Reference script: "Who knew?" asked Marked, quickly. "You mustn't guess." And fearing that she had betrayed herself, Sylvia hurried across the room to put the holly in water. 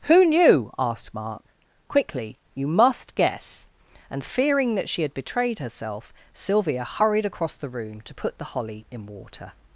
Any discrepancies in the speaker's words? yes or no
yes